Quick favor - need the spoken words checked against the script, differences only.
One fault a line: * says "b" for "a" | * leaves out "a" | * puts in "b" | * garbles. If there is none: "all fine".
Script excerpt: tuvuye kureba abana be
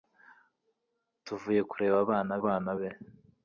* puts in "abana"